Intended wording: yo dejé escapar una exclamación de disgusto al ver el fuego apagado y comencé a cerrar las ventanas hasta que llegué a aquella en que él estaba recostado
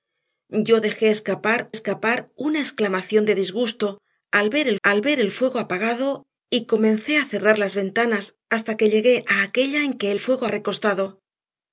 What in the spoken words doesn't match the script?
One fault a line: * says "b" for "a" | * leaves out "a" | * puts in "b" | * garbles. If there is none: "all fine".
* puts in "escapar"
* puts in "al ver el"
* says "fuego" for "estaba"